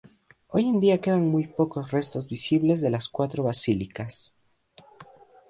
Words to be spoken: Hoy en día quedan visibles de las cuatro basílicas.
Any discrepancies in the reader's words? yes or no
yes